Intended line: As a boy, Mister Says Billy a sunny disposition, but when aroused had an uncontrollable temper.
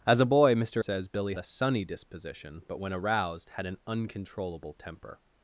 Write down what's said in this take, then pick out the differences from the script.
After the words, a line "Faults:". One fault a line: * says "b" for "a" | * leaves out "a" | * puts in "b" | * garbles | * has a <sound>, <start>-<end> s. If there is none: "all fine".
As a boy, Mister Says Billy a sunny disposition, but when aroused had an uncontrollable temper.
Faults:
all fine